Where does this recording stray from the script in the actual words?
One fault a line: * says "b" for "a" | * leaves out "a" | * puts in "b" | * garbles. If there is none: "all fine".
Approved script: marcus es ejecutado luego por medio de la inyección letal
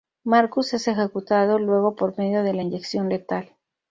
all fine